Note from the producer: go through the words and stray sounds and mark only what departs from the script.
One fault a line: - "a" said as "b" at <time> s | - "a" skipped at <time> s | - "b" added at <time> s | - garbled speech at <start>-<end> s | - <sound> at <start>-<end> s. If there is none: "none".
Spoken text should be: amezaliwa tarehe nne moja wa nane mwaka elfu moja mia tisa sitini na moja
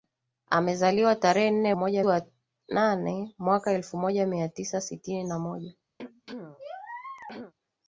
- throat clearing at 6.0-7.5 s